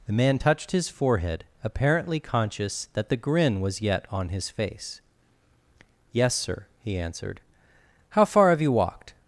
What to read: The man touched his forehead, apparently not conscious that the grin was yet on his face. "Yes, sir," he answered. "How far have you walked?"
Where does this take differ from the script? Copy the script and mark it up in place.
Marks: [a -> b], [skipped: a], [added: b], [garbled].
The man touched his forehead, apparently [skipped: not] conscious that the grin was yet on his face. "Yes, sir," he answered. "How far have you walked?"